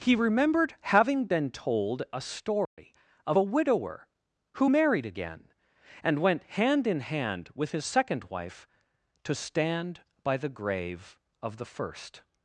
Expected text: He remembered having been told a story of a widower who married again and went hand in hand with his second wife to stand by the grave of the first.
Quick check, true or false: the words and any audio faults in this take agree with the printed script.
false